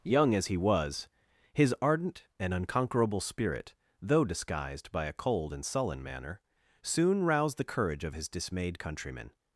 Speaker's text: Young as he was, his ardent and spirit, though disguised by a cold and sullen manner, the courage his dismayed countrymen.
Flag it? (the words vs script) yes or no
yes